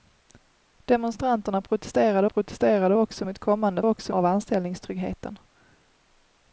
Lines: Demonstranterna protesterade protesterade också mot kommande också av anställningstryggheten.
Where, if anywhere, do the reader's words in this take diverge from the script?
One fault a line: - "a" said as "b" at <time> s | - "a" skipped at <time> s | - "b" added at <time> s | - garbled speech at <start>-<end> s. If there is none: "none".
none